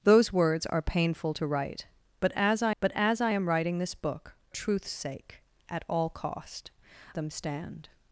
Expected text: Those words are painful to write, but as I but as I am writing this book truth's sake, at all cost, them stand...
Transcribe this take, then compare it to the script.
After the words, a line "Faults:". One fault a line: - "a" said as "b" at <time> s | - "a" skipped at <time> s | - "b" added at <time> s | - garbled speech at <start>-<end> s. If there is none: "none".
Those words are painful to write, but as I but as I am writing this book truth's sake, at all cost, them stand...
Faults:
none